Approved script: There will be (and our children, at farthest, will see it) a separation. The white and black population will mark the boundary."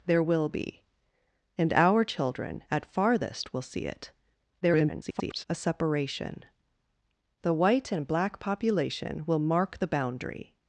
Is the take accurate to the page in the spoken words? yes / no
no